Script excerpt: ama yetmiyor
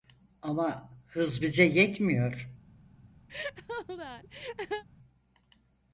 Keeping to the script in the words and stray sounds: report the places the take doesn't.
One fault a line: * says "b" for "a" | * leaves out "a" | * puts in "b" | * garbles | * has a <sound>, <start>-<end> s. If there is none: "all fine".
* puts in "hız bize"
* has a laugh, 3.3-4.8 s